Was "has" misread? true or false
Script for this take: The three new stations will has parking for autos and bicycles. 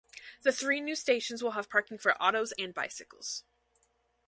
true